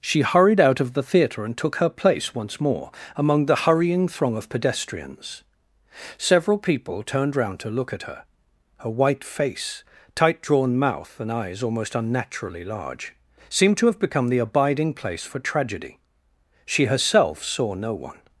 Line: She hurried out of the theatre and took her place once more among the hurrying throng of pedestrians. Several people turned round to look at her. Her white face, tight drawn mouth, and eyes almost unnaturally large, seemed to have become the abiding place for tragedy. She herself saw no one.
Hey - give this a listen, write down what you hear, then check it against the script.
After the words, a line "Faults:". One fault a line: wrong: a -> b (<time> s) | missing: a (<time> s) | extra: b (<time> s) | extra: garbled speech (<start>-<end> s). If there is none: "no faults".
She hurried out of the theatre and took her place once more among the hurrying throng of pedestrians. Several people turned round to look at her. Her white face, tight drawn mouth, and eyes almost unnaturally large, seemed to have become the abiding place for tragedy. She herself saw no one.
Faults:
no faults